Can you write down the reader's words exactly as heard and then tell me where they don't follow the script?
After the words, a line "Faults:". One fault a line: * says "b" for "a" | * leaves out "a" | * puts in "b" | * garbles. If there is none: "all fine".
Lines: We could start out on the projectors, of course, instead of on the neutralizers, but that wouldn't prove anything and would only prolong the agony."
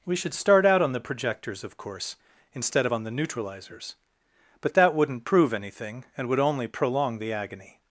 We should start out on the projectors, of course, instead of on the neutralizers, but that wouldn't prove anything and would only prolong the agony."
Faults:
* says "should" for "could"